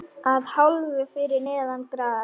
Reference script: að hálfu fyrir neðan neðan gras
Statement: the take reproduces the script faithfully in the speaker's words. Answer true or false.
false